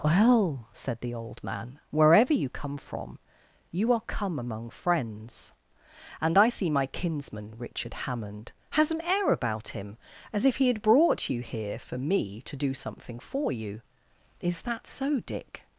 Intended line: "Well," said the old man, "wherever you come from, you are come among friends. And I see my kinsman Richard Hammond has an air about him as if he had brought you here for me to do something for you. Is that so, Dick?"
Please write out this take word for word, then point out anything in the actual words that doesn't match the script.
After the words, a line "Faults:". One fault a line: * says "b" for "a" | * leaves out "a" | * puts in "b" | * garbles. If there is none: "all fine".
"Well," said the old man, "wherever you come from, you are come among friends. And I see my kinsman Richard Hammond has an air about him as if he had brought you here for me to do something for you. Is that so, Dick?"
Faults:
all fine